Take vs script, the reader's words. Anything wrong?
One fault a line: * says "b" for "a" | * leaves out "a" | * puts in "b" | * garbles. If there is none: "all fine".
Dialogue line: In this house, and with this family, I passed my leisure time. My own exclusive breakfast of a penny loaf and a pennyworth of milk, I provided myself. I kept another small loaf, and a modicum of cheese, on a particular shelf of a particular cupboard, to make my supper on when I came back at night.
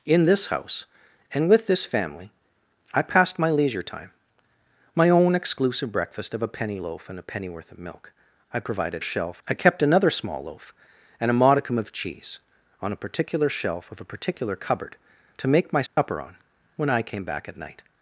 * says "shelf" for "myself"